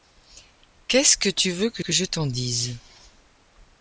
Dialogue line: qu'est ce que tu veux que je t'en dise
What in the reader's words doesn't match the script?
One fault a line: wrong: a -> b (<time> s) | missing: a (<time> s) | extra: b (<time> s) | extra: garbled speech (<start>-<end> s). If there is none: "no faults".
extra: que (1.8 s)